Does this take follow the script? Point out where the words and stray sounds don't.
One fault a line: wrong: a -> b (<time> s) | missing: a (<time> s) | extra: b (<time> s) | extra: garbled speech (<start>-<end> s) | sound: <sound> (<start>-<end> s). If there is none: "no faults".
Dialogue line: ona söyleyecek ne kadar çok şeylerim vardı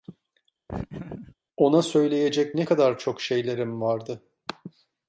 sound: laugh (0.7-1.4 s)